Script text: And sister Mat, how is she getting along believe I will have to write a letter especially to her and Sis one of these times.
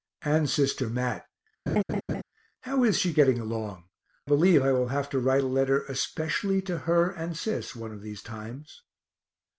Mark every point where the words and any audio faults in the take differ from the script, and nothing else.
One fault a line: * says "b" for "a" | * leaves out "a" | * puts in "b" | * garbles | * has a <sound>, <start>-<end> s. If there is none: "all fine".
* has a laugh, 1.7-2.2 s